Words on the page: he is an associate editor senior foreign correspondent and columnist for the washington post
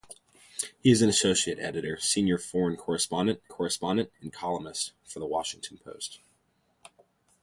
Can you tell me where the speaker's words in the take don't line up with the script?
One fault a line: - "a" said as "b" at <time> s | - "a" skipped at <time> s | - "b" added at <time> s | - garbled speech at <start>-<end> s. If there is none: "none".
- "correspondent" added at 3.5 s